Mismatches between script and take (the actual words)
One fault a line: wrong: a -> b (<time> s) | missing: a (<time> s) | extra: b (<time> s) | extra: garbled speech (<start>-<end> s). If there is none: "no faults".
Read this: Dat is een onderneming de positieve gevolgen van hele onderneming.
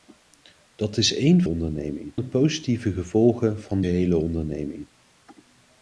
no faults